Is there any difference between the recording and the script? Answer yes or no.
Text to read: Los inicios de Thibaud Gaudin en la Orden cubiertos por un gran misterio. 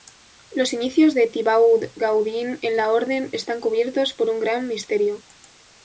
yes